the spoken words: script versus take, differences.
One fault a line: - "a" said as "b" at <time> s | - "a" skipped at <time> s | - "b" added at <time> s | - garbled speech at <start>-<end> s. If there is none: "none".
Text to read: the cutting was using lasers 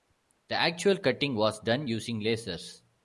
- "actual" added at 0.5 s
- "done" added at 1.6 s